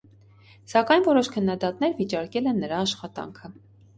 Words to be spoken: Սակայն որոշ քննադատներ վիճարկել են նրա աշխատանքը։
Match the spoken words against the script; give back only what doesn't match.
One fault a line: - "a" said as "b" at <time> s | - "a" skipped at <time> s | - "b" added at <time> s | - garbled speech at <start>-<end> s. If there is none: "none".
none